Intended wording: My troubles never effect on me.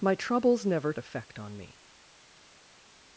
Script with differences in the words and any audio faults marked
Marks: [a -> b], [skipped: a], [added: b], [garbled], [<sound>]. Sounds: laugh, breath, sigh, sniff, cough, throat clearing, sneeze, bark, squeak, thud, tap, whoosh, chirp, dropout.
My troubles never effect on me.